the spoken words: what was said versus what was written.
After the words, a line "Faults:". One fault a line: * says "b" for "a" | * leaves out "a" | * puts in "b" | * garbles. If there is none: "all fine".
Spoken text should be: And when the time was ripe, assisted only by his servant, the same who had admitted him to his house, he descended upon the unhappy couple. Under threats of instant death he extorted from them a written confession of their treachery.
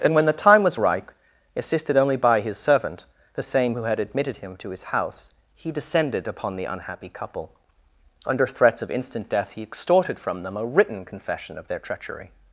And when the time was ripe, assisted only by his servant, the same who had admitted him to his house, he descended upon the unhappy couple. Under threats of instant death he extorted from them a written confession of their treachery.
Faults:
all fine